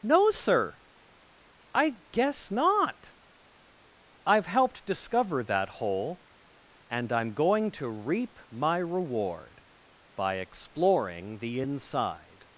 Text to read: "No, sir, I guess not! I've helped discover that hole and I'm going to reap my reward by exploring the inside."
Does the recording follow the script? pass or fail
pass